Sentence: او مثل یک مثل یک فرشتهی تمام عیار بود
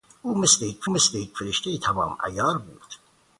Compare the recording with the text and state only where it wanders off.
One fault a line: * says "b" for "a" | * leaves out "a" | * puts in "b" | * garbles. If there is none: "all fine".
all fine